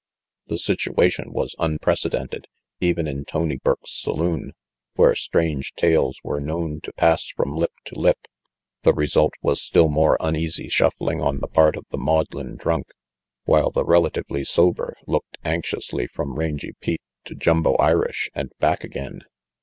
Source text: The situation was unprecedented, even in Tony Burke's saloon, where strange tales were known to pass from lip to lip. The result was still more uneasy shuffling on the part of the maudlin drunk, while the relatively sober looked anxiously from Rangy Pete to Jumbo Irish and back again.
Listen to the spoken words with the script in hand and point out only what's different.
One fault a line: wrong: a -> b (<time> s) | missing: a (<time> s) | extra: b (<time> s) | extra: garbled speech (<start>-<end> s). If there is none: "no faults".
no faults